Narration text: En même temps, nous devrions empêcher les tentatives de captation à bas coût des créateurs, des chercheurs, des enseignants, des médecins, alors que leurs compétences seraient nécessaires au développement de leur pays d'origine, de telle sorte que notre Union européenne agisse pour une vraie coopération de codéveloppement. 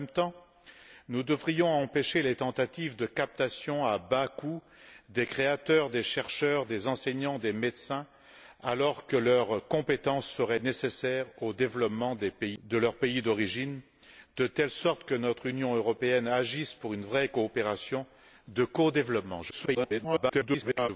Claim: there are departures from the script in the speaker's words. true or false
true